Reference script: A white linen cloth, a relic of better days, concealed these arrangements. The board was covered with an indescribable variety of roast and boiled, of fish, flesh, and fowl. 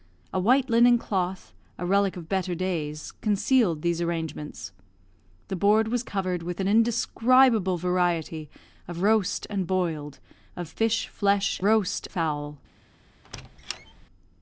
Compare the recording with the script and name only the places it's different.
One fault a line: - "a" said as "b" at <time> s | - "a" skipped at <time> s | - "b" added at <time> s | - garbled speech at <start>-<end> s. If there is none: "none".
- "and" said as "roast" at 11.6 s